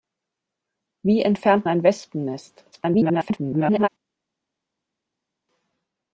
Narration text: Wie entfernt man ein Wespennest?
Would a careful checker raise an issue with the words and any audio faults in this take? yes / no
yes